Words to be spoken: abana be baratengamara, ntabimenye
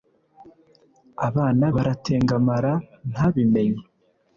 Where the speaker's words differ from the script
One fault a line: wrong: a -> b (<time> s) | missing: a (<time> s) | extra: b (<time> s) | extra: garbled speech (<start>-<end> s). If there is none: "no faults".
missing: be (1.6 s)